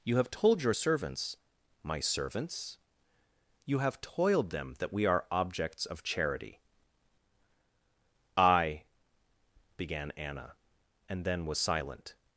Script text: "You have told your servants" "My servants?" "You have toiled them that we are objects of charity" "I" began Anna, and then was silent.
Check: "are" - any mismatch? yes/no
no